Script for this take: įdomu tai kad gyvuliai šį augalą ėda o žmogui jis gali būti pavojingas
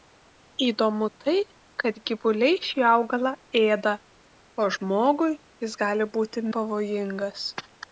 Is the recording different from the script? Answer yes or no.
no